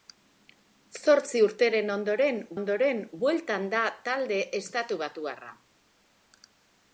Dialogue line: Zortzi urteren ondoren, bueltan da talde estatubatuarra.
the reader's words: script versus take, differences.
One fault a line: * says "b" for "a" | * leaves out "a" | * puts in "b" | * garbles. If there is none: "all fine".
* puts in "ondoren"